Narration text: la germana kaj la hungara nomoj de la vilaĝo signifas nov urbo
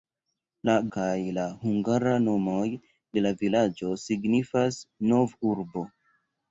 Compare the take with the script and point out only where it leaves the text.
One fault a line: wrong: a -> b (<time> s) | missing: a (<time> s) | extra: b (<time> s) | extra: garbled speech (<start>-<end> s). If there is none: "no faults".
missing: germana (0.8 s)